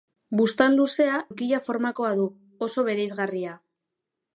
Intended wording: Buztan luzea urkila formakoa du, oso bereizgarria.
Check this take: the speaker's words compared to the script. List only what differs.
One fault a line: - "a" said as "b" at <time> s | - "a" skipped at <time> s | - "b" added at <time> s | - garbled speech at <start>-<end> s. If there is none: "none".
none